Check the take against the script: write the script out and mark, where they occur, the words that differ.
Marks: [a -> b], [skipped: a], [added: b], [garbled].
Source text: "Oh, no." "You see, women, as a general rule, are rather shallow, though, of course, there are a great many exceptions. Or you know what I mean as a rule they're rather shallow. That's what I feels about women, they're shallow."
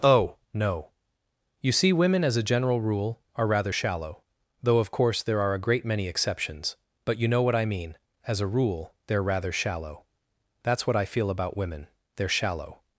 "Oh, no." "You see, women, as a general rule, are rather shallow, though, of course, there are a great many exceptions. [Or -> But] you know what I mean as a rule they're rather shallow. That's what I [feels -> feel] about women, they're shallow."